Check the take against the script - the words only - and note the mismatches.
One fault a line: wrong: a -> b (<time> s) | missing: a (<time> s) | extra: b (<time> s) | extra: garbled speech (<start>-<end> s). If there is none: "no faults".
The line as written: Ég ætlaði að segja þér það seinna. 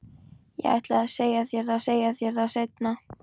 extra: segja þér það (1.9 s)